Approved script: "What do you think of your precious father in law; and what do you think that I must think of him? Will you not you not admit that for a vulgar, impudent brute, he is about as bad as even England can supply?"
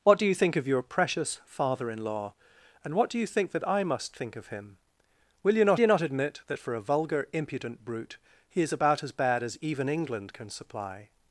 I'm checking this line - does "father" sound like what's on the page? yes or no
yes